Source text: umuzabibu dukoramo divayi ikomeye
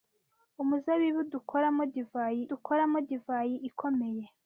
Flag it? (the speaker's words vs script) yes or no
yes